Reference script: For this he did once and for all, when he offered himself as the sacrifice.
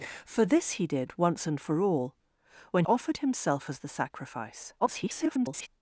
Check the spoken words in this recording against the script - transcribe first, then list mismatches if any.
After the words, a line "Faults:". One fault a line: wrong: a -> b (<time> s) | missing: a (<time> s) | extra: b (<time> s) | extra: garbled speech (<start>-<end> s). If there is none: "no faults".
For this he did once and for all, when offered himself as the sacrifice. [garbled]
Faults:
missing: he (2.9 s)
extra: garbled speech (4.8-5.7 s)